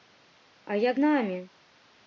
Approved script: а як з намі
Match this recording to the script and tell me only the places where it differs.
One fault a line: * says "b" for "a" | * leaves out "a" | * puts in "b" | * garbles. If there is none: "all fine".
* leaves out "з"